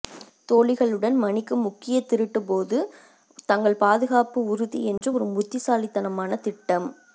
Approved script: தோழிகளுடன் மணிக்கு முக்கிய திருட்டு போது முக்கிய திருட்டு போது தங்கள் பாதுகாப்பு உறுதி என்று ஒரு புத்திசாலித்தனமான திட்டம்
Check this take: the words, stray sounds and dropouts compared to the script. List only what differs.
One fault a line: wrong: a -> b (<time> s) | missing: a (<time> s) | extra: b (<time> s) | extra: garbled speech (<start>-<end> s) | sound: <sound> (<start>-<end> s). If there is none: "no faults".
missing: முக்கிய திருட்டு போது (2.8 s)
sound: dropout (5.0-5.0 s)